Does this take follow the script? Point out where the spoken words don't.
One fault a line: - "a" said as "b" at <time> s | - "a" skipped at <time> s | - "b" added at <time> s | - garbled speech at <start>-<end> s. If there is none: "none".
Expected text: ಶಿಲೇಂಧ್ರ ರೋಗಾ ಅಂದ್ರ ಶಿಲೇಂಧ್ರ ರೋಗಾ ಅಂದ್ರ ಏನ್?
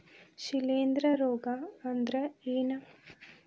- "ಶಿಲೇಂಧ್ರ ರೋಗಾ ಅಂದ್ರ" skipped at 2.1 s